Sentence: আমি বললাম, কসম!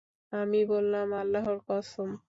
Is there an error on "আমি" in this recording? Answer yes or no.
no